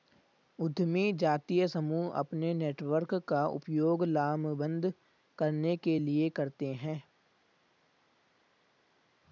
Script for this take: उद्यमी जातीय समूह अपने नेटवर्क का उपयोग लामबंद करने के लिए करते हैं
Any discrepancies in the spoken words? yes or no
no